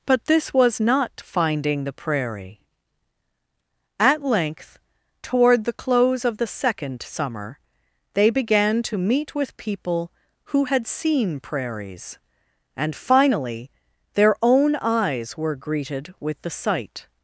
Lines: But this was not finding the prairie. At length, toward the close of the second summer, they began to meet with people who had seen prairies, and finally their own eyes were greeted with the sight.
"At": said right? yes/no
yes